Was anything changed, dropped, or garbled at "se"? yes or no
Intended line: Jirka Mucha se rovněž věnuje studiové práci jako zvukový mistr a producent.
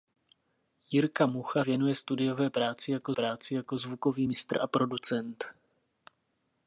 yes